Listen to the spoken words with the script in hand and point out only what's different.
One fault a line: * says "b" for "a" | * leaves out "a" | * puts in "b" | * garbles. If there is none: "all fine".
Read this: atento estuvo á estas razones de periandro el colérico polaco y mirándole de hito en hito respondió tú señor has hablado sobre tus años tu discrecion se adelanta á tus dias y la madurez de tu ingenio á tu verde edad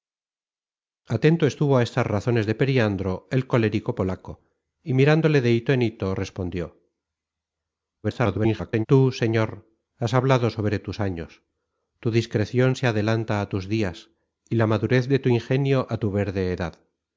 * garbles